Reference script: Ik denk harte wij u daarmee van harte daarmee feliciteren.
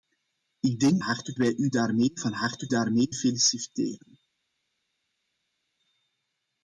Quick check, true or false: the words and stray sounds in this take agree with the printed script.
true